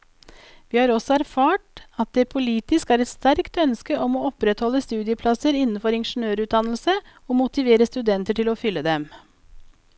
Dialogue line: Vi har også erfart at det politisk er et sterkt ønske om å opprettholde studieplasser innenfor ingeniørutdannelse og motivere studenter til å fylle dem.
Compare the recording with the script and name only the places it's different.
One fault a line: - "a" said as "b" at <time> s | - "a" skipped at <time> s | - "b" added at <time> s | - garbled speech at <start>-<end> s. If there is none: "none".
none